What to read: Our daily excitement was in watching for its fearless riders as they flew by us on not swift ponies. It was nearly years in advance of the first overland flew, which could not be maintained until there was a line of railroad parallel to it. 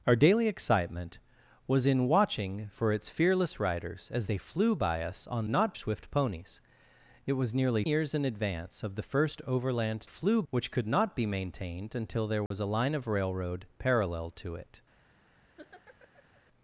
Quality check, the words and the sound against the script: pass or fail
fail